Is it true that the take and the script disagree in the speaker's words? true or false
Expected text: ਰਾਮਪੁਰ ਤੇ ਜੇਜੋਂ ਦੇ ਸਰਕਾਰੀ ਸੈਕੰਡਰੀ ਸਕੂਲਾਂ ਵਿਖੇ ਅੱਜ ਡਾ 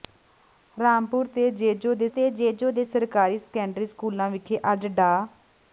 true